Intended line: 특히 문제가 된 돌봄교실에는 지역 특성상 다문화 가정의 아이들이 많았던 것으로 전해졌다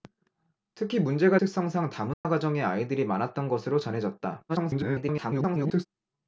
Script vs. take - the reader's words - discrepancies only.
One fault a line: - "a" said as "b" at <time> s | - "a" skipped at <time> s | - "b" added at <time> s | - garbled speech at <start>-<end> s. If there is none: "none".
- "된 돌봄교실에는 지역" skipped at 1.4 s
- garbled speech at 4.5-5.9 s